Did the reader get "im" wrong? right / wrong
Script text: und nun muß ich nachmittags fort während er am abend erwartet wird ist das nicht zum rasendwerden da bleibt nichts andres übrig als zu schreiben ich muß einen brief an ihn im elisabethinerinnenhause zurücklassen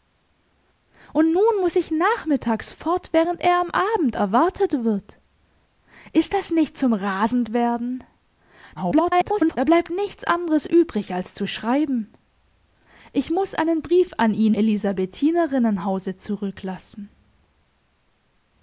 wrong